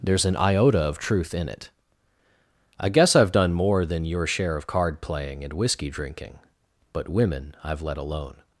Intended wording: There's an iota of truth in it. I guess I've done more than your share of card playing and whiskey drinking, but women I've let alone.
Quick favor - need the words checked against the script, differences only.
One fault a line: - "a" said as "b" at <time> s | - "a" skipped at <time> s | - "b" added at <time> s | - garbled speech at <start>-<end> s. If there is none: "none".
none